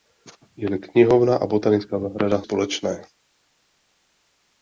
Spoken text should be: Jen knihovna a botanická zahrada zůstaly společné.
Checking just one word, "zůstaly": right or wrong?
wrong